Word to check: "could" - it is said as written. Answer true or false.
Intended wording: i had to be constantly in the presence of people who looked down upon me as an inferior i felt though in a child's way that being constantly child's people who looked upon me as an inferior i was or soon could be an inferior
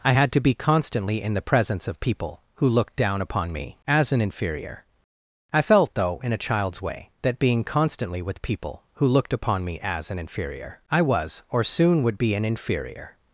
false